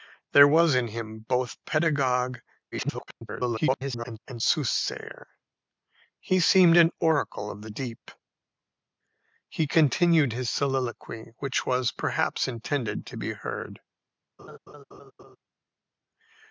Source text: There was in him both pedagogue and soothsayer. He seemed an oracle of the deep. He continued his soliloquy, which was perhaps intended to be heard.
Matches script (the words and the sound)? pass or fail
fail